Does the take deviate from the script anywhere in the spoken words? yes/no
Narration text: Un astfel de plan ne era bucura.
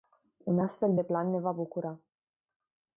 yes